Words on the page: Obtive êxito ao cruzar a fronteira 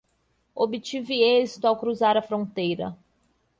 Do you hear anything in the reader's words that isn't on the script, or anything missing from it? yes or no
no